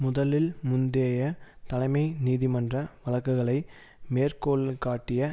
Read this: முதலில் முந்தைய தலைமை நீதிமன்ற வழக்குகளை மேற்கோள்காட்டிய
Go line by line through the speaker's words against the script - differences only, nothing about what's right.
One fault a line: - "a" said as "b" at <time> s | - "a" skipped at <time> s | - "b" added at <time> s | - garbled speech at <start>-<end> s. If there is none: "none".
none